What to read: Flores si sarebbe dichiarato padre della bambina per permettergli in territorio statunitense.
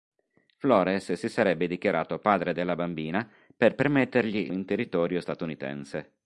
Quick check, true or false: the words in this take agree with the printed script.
true